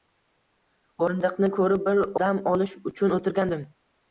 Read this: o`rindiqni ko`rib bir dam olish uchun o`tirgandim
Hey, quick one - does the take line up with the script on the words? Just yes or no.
yes